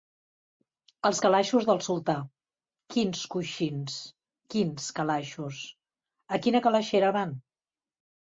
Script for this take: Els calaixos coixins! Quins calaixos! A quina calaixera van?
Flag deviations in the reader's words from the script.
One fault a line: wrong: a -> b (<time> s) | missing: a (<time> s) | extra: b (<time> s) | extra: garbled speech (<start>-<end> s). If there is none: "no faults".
extra: del sultà Quins (1.7 s)